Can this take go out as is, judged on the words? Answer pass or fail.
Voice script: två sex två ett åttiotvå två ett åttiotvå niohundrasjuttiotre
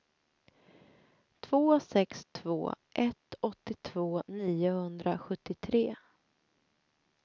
fail